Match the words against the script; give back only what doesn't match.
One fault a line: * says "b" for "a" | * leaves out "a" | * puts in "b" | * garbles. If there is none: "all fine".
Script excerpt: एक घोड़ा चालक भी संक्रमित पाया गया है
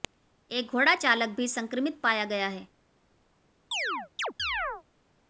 all fine